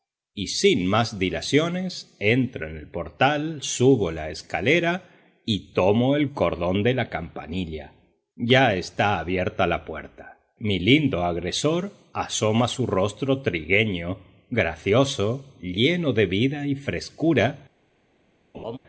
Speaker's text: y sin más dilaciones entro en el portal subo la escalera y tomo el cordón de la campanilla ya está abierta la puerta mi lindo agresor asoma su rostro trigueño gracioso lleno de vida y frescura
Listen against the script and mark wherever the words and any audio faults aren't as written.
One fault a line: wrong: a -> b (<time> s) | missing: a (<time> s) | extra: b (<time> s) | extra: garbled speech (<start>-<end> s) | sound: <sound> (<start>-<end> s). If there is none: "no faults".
sound: laugh (18.5-18.8 s)